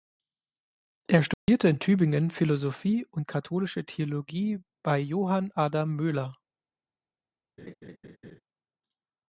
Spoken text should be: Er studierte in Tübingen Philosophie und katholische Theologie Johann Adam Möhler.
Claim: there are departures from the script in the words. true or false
true